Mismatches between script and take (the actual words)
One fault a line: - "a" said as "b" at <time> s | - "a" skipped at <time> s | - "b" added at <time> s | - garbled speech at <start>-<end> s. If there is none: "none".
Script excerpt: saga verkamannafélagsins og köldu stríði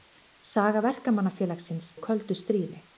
none